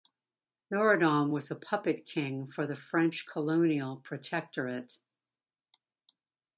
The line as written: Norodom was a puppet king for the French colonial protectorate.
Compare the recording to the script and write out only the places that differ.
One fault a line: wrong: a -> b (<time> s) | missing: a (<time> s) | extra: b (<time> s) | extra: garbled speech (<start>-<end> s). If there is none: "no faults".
no faults